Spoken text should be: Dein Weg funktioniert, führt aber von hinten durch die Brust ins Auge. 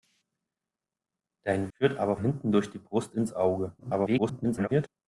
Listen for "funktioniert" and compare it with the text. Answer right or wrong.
wrong